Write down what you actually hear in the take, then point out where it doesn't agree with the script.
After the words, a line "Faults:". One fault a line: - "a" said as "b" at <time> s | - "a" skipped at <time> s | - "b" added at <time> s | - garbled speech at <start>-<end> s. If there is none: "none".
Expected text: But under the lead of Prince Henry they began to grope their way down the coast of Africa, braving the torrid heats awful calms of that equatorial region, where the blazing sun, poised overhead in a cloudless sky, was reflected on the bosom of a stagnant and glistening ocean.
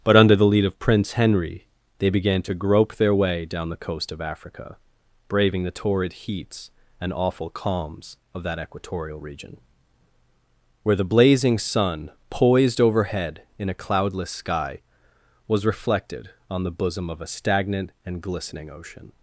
But under the lead of Prince Henry they began to grope their way down the coast of Africa, braving the torrid heats and awful calms of that equatorial region, where the blazing sun, poised overhead in a cloudless sky, was reflected on the bosom of a stagnant and glistening ocean.
Faults:
- "and" added at 7.0 s